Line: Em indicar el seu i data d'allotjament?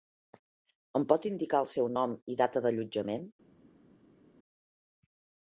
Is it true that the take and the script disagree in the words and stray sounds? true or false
true